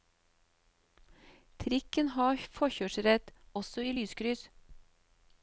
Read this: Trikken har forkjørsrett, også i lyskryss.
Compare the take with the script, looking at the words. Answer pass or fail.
pass